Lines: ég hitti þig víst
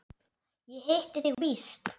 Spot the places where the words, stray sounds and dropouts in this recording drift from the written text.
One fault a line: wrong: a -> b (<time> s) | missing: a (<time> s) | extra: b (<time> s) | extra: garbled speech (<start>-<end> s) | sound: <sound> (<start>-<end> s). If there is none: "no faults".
sound: dropout (1.3-1.4 s)